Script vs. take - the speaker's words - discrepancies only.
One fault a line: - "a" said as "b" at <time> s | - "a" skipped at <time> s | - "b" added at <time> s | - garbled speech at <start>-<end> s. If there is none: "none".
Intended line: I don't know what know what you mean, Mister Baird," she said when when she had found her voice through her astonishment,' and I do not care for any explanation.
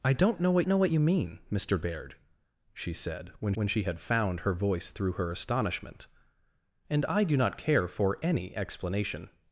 none